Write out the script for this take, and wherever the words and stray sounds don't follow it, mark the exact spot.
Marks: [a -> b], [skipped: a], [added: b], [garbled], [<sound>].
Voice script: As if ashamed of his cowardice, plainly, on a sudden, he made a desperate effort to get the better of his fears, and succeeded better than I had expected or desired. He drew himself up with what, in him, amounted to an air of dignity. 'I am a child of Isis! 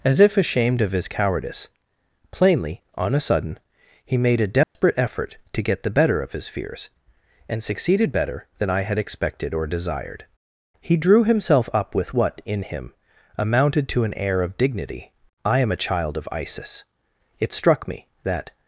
As if ashamed of his cowardice, plainly, on a sudden, he made a desperate [dropout] effort to get the better of his fears, and succeeded better than I had expected or desired. He drew himself up with what, in him, amounted to an air of dignity. 'I am a child of Isis! [added: It struck me that]